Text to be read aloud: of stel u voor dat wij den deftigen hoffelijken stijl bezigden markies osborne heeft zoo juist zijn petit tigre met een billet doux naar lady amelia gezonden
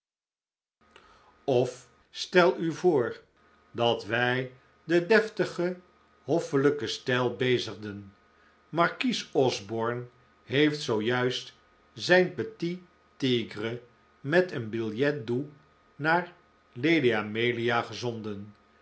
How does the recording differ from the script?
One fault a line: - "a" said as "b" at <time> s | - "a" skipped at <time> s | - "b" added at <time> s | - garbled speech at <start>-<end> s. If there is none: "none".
none